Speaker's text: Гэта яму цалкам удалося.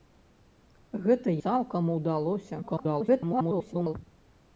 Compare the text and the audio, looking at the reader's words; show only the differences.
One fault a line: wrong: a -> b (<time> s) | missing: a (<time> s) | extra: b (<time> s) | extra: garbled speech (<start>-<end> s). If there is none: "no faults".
missing: яму (1.4 s)
extra: garbled speech (2.6-3.9 s)